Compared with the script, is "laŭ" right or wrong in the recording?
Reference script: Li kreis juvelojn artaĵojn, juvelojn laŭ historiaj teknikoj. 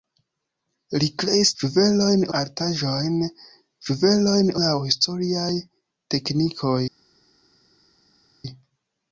right